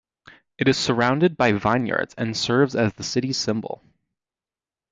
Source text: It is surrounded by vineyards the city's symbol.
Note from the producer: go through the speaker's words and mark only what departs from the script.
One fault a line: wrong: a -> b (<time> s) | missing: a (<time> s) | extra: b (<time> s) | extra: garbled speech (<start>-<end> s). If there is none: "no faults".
extra: and serves as (2.2 s)